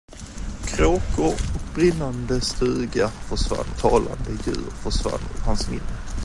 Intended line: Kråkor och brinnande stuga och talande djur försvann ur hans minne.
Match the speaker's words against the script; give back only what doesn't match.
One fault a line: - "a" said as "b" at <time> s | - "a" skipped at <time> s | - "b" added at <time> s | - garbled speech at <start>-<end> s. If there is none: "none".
- "och" said as "försvann" at 3.3 s